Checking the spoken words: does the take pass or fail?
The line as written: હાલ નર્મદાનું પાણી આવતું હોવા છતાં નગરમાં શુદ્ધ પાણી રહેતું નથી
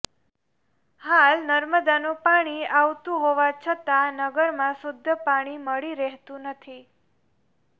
fail